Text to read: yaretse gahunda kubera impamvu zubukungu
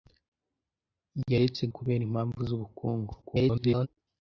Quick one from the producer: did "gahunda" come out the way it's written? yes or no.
no